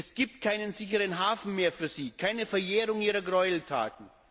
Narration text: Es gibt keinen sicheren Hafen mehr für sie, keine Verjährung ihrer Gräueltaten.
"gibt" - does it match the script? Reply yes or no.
yes